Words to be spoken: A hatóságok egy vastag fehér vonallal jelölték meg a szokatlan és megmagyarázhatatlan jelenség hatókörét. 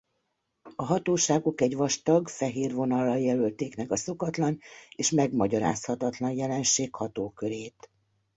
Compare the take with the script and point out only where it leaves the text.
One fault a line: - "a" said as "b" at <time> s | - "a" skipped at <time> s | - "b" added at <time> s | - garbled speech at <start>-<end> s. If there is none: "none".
none